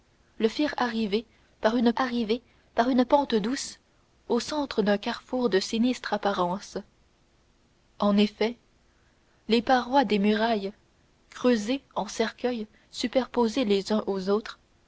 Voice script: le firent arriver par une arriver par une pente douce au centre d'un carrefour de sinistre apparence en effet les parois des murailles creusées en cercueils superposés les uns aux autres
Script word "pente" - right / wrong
right